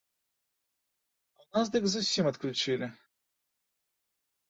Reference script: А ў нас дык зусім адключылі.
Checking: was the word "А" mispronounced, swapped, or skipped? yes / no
no